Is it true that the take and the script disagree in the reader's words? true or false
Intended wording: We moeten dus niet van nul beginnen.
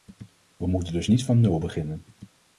false